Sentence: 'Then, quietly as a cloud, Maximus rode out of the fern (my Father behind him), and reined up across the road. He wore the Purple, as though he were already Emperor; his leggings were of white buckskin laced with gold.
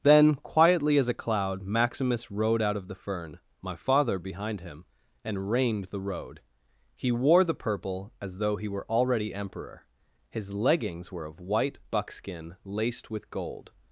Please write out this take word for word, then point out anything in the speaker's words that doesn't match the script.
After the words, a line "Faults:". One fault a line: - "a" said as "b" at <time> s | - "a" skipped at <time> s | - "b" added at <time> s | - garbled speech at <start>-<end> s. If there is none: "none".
'Then, quietly as a cloud, Maximus rode out of the fern (my Father behind him), and reined the road. He wore the Purple, as though he were already Emperor; his leggings were of white buckskin laced with gold.
Faults:
- "up across" skipped at 5.9 s